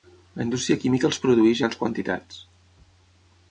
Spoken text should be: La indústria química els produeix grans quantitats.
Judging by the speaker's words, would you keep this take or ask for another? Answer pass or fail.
pass